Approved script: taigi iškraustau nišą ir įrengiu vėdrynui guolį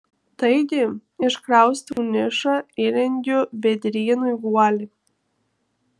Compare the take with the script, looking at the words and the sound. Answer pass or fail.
fail